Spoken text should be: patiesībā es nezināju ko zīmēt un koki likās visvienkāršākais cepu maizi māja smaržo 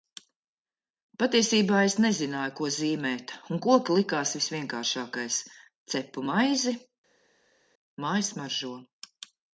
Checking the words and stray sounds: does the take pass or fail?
pass